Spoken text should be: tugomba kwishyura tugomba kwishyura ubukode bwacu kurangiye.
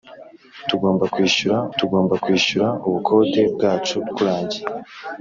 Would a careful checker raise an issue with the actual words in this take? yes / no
no